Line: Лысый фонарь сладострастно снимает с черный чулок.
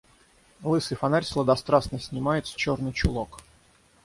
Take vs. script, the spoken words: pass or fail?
pass